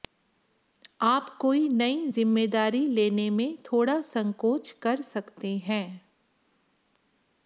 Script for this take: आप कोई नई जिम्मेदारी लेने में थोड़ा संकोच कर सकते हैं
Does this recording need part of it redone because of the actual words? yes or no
no